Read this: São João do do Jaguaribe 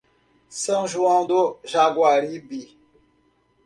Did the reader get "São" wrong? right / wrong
right